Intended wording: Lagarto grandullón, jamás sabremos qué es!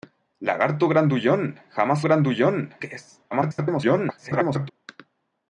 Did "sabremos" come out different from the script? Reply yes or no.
yes